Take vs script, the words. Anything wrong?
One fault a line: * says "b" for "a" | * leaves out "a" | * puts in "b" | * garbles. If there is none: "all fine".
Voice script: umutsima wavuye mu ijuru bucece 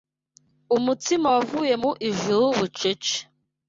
all fine